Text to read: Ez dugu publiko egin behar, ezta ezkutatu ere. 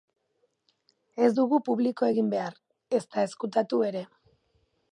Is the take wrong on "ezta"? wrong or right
right